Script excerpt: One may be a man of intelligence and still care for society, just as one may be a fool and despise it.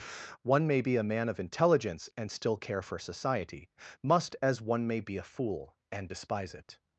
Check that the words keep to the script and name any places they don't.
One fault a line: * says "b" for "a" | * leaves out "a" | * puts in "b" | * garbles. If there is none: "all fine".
* says "must" for "just"